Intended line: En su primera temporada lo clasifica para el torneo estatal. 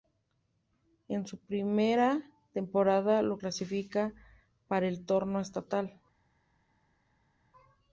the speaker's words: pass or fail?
pass